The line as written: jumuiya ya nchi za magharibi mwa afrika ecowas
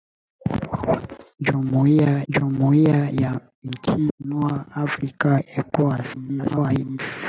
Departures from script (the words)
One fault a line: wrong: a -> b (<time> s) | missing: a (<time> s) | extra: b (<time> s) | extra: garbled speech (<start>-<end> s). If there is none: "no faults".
extra: jumuiya (2.3 s)
missing: za magharibi (4.1 s)
extra: garbled speech (6.1-7.0 s)